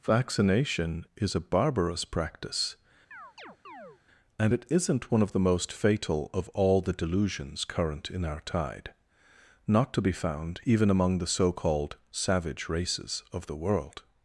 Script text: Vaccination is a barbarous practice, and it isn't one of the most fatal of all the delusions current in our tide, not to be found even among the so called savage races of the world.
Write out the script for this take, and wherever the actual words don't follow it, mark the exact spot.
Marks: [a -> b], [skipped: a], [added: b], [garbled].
Vaccination is a barbarous practice, and it isn't one of the most fatal of all the delusions current in our tide, not to be found even among the so called savage races of the world.